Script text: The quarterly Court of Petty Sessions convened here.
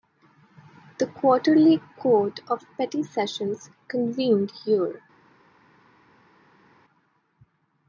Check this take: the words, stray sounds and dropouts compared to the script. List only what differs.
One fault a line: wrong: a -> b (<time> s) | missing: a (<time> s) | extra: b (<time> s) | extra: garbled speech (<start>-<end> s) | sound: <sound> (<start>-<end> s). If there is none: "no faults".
no faults